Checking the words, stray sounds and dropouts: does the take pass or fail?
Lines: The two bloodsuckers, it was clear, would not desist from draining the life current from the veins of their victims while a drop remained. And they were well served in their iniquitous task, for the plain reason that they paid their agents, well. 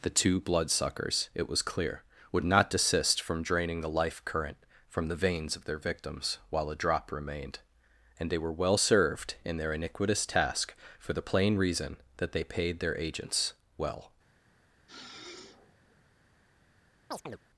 fail